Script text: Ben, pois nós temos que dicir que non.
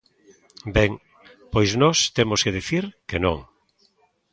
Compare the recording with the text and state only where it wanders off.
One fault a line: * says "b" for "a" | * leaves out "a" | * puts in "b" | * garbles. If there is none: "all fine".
all fine